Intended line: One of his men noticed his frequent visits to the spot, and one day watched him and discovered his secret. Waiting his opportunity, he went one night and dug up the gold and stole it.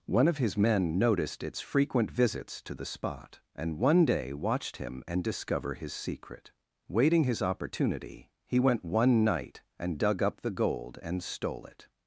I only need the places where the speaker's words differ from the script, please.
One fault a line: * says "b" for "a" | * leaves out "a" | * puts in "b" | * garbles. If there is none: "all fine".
* says "its" for "his"
* says "discover" for "discovered"